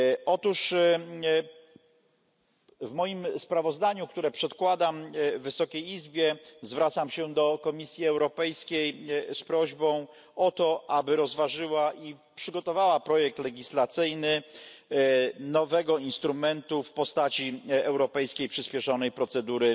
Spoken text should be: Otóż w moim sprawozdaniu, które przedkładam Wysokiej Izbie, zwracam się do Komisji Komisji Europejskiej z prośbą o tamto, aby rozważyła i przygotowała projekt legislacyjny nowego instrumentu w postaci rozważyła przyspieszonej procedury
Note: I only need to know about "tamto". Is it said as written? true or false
false